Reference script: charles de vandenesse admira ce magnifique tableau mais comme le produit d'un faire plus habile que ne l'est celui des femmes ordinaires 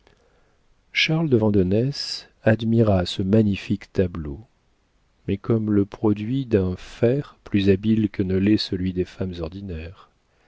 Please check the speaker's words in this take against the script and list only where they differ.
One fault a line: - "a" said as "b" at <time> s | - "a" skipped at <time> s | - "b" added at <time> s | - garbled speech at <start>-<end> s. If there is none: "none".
none